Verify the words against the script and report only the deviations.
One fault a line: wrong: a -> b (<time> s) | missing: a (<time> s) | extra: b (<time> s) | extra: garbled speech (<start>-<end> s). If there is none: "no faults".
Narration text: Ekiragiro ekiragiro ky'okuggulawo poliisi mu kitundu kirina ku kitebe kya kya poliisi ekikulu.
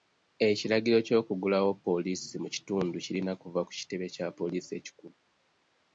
missing: ekiragiro (1.0 s)
extra: kuva (3.4 s)
missing: kya (4.3 s)